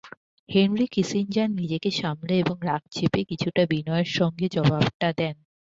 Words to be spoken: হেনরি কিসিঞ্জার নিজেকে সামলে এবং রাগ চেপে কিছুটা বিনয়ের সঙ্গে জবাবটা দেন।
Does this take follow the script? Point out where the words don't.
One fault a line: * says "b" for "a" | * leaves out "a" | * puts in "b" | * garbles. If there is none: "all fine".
all fine